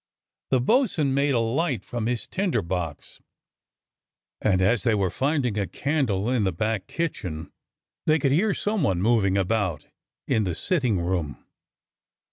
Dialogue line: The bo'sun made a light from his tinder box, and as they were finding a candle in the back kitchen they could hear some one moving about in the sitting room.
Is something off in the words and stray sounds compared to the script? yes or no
no